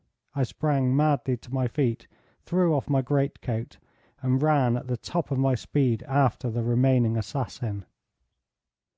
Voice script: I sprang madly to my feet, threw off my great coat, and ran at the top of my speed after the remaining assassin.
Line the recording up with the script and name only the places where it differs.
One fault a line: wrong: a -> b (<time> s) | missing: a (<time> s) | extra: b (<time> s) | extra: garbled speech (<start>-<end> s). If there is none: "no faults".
no faults